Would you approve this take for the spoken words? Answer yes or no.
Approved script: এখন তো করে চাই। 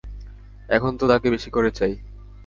no